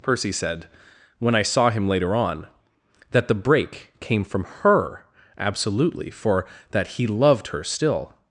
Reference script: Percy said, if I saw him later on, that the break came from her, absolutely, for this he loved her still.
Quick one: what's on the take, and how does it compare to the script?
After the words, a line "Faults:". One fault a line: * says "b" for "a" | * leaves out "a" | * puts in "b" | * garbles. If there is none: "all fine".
Percy said, when I saw him later on, that the break came from her, absolutely, for that he loved her still.
Faults:
* says "when" for "if"
* says "that" for "this"